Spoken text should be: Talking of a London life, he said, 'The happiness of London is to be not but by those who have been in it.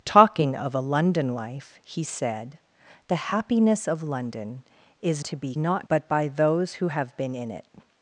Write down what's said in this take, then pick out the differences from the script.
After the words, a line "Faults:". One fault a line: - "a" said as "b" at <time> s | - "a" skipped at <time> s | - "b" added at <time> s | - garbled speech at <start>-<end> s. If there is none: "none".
Talking of a London life, he said, 'The happiness of London is to be not but by those who have been in it.
Faults:
none